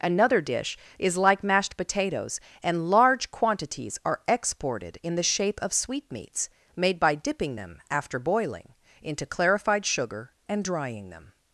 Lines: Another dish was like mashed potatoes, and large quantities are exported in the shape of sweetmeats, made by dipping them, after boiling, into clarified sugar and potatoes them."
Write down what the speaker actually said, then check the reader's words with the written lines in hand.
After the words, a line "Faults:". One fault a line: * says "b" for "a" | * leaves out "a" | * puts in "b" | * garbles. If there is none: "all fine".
Another dish is like mashed potatoes, and large quantities are exported in the shape of sweetmeats, made by dipping them, after boiling, into clarified sugar and drying them."
Faults:
* says "is" for "was"
* says "drying" for "potatoes"